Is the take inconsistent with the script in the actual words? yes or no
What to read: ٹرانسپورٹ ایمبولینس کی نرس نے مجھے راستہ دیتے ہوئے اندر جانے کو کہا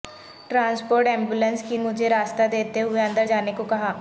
yes